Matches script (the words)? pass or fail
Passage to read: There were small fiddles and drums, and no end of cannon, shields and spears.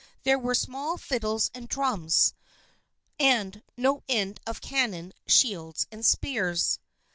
pass